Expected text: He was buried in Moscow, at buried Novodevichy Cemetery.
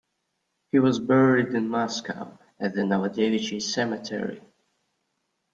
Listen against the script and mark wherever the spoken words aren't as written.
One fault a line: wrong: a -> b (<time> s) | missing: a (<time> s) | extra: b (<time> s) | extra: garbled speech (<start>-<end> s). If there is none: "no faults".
wrong: buried -> the (2.7 s)